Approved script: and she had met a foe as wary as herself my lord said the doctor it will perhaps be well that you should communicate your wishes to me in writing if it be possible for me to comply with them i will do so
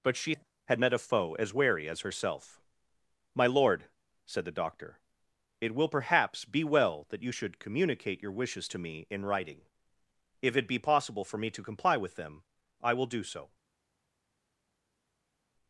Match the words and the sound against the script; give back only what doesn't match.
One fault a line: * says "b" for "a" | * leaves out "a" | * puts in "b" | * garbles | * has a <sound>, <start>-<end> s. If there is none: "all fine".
* says "but" for "and"